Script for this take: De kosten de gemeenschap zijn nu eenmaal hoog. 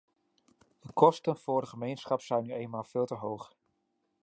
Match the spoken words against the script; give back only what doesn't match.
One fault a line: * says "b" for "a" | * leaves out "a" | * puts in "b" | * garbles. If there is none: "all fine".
* puts in "voor"
* puts in "veel te"